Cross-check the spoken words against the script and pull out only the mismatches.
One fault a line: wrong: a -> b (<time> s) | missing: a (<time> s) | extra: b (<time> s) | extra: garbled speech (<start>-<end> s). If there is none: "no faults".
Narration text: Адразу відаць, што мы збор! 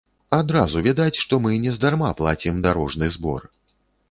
extra: нездарма плацім дарожны (1.7 s)